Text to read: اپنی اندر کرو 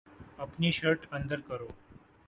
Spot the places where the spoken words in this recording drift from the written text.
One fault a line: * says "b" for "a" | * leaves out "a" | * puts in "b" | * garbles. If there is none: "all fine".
* puts in "شرٹ"